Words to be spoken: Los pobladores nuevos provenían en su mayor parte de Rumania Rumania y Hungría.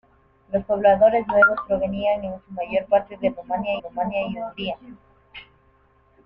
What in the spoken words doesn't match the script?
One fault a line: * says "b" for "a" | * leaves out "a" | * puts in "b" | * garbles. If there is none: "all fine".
all fine